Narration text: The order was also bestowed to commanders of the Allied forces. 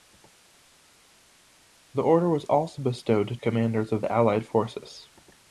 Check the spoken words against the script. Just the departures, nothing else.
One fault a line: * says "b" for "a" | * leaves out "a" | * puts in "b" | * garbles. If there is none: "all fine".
all fine